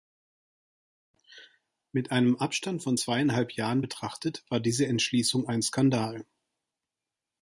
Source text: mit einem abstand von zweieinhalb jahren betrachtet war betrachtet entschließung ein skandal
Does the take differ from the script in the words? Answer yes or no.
yes